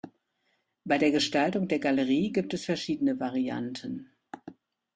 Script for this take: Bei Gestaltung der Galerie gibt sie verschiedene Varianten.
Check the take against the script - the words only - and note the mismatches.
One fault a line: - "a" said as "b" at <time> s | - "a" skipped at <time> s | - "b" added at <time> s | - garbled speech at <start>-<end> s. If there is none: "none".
- "der" added at 1.0 s
- "sie" said as "es" at 2.5 s